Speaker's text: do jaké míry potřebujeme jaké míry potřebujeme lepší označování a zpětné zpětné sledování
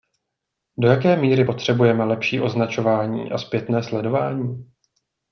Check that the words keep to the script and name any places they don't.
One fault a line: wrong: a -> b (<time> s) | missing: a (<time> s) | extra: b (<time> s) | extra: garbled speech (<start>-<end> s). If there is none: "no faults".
missing: jaké míry potřebujeme (2.0 s)
missing: zpětné (3.8 s)